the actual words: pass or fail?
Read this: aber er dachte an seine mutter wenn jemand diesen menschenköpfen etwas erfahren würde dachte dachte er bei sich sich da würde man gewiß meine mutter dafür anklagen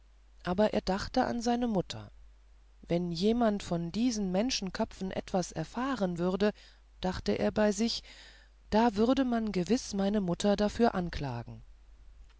fail